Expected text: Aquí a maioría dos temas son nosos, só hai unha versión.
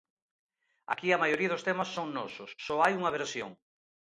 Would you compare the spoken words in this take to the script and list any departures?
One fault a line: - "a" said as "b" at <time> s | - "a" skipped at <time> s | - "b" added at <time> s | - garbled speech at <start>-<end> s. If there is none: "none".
none